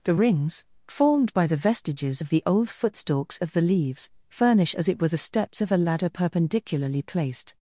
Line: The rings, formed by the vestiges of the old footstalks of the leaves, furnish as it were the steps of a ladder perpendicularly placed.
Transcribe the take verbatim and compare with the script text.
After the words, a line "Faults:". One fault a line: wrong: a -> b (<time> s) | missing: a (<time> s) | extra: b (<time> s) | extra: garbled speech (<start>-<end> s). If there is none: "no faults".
The rings, formed by the vestiges of the old footstalks of the leaves, furnish as it were the steps of a ladder perpendicularly placed.
Faults:
no faults